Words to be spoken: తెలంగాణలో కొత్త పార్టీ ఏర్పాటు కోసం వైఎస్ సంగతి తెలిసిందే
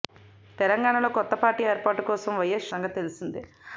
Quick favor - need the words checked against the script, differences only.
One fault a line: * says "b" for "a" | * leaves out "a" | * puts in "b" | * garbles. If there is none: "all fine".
all fine